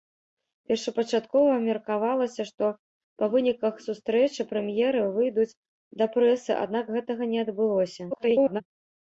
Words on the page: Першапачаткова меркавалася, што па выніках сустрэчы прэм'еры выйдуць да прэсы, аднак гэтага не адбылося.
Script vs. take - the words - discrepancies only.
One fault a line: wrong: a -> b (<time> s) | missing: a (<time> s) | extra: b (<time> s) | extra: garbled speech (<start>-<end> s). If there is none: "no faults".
extra: garbled speech (8.1-8.6 s)